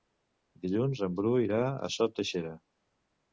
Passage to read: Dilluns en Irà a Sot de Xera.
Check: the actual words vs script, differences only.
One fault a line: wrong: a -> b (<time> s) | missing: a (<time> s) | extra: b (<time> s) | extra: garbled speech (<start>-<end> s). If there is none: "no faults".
extra: Bru (1.2 s)